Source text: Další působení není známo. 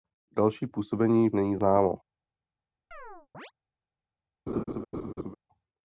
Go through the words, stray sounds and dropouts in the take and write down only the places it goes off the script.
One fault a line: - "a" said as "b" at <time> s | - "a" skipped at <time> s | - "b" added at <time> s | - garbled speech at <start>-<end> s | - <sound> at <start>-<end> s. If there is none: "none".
- chirp at 2.9-3.5 s
- laugh at 4.5-5.3 s